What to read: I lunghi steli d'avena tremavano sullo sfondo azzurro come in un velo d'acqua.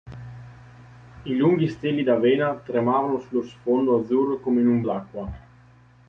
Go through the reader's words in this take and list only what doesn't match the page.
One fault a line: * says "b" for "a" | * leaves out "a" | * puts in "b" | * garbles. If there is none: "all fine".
* leaves out "velo"